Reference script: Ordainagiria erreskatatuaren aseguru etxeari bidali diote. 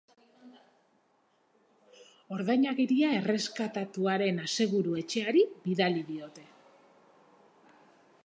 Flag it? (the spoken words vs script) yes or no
no